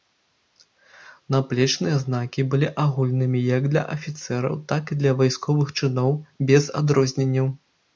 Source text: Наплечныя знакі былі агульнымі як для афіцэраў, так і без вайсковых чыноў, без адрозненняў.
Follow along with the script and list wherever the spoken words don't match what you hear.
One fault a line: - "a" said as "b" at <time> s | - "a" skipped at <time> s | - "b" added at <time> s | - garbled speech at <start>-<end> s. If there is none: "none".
- "без" said as "для" at 5.0 s